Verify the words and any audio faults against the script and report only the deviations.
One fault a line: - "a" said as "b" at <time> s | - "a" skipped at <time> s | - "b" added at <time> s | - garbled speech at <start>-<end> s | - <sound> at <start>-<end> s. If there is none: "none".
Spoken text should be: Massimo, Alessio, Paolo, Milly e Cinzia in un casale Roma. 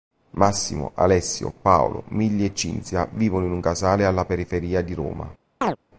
- "vivono" added at 3.1 s
- "alla periferia di" added at 4.0 s
- chirp at 5.6-5.8 s